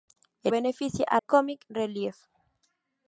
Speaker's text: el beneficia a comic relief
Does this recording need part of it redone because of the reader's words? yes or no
no